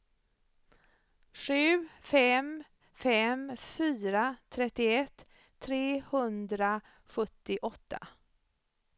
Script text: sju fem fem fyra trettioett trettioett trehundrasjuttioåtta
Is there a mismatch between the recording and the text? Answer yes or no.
yes